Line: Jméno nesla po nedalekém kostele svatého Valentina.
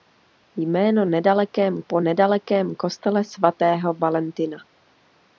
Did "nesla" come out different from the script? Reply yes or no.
yes